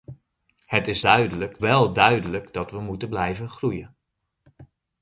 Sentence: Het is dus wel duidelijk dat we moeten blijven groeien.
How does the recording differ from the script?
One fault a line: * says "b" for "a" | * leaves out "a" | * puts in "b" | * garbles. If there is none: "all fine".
* says "duidelijk" for "dus"